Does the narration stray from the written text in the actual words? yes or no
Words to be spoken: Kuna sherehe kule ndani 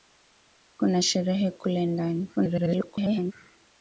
yes